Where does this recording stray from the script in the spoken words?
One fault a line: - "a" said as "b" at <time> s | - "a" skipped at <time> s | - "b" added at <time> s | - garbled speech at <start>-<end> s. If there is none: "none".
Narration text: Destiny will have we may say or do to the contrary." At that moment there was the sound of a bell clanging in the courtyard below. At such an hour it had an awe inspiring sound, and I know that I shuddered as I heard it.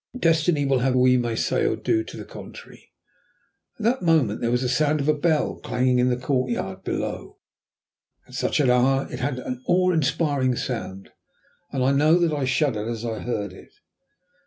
none